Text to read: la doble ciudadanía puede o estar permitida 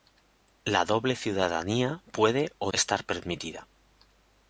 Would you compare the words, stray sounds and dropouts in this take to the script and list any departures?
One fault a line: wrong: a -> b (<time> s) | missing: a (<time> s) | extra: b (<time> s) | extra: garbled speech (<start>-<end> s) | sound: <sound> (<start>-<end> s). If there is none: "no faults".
no faults